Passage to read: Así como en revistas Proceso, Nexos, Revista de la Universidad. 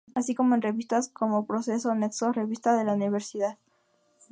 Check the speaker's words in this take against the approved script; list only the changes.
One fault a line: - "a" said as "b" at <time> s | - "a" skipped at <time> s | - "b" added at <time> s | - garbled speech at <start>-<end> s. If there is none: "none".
- "como" added at 1.1 s